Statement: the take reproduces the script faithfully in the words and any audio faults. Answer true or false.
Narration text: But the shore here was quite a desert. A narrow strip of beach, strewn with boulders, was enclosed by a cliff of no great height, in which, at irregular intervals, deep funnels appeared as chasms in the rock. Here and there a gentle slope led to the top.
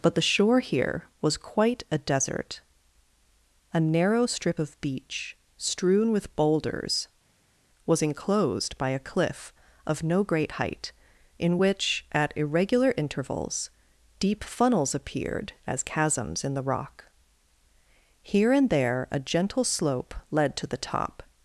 true